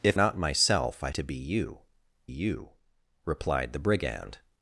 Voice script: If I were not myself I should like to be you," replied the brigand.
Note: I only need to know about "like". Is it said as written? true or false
false